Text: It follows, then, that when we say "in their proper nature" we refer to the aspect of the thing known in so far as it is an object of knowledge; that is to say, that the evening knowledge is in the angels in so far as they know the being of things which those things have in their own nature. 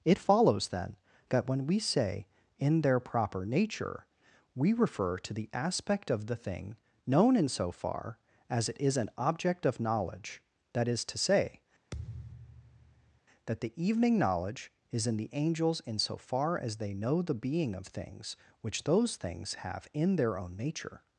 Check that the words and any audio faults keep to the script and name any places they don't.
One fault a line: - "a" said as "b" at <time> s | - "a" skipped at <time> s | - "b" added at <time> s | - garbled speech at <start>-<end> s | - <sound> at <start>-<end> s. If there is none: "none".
- thud at 11.9-13.2 s